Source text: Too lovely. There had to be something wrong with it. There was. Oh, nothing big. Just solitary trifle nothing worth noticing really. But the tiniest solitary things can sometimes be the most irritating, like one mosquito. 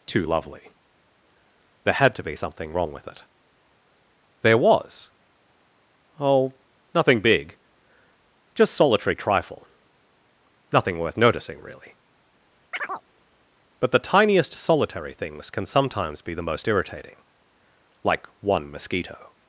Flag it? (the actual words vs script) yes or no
no